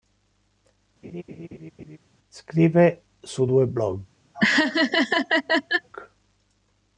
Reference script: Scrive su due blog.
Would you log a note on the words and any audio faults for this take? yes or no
yes